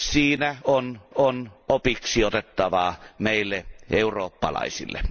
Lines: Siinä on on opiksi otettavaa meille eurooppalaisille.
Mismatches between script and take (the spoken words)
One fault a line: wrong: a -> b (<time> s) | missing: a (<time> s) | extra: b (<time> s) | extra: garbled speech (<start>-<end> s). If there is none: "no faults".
no faults